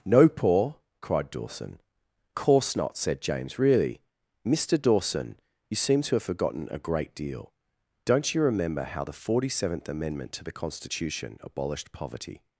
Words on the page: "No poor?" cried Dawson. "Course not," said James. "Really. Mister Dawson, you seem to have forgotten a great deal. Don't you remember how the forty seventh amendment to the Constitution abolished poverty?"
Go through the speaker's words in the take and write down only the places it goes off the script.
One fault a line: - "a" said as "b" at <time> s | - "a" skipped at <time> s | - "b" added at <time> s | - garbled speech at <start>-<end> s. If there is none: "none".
none